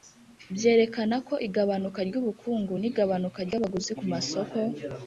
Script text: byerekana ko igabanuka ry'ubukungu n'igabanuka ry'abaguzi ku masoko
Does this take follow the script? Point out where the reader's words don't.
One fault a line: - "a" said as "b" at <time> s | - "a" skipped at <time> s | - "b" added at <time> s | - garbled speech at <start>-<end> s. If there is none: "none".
none